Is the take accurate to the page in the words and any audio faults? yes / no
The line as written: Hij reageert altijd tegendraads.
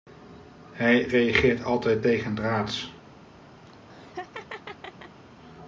no